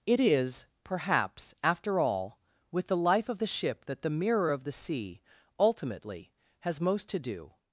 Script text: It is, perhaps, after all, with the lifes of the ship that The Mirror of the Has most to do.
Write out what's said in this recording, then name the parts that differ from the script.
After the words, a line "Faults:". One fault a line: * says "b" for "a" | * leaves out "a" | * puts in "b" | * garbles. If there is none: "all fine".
It is, perhaps, after all, with the life of the ship that The Mirror of the Sea, ultimately, has most to do.
Faults:
* says "life" for "lifes"
* puts in "Sea ultimately"